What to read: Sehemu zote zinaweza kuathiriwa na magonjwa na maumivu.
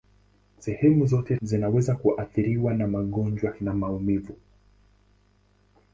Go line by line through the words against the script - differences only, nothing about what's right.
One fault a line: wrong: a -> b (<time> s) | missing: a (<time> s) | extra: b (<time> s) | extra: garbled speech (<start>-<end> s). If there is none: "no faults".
no faults